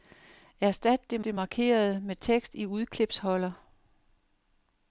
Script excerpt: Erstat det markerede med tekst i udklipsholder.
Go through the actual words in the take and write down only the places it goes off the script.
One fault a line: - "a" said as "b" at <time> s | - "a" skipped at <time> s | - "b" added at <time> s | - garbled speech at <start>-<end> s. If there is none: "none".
- "det" added at 1.2 s